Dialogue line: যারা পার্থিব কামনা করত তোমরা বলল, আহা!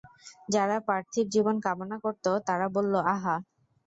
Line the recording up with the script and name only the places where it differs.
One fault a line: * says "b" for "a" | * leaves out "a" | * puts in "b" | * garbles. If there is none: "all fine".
* puts in "জীবন"
* says "তারা" for "তোমরা"